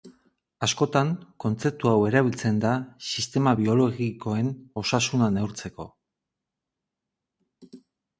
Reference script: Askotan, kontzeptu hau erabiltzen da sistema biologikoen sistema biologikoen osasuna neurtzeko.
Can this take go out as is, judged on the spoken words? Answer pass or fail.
fail